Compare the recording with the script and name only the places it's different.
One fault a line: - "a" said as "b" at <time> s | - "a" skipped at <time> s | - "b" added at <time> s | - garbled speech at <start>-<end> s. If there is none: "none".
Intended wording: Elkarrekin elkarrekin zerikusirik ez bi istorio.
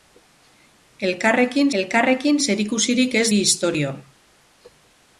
none